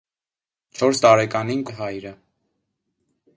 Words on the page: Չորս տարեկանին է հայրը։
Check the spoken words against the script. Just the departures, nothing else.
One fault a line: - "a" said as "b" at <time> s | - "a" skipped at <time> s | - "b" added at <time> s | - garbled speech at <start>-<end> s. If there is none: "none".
none